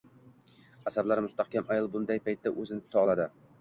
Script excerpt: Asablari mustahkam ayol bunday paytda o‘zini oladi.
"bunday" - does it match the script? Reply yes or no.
yes